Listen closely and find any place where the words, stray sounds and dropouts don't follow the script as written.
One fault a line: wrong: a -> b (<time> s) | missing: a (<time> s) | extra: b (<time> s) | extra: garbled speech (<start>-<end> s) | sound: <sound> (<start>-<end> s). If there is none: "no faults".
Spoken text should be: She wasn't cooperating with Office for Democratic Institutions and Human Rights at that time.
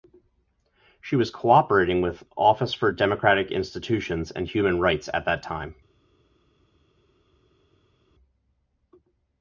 wrong: wasn't -> was (1.1 s)